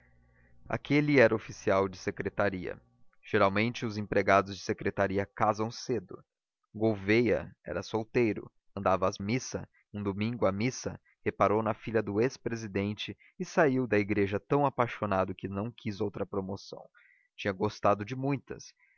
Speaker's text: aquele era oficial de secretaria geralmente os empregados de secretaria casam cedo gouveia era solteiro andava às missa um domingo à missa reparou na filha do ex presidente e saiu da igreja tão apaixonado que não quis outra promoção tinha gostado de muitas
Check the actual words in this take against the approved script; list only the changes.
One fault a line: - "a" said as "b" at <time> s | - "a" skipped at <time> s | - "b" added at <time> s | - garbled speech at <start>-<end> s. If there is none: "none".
none